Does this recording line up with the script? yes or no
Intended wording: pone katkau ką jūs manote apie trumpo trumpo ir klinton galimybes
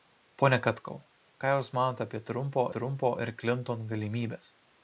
yes